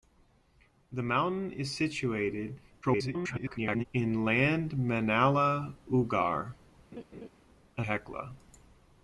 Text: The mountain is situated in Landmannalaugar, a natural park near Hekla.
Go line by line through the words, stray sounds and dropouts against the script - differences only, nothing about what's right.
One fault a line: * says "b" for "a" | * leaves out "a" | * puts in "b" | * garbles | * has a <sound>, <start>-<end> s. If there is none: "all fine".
* garbles
* has a laugh, 6.9-7.3 s
* leaves out "natural park near"